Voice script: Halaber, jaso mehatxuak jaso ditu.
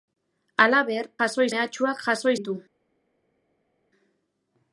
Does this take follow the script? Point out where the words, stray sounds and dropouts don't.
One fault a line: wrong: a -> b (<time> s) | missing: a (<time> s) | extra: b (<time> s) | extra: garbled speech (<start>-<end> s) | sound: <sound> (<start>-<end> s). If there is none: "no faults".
no faults